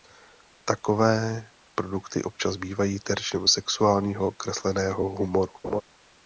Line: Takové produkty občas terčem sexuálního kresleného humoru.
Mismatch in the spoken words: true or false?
true